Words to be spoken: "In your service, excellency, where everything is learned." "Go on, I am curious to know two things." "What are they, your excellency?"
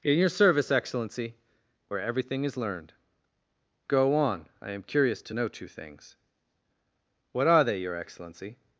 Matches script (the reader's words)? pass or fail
pass